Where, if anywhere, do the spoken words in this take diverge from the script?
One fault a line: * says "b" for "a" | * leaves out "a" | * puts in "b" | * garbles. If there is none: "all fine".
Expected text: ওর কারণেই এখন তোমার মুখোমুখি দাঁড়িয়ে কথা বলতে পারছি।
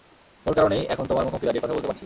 all fine